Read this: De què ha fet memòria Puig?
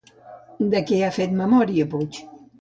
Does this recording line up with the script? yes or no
yes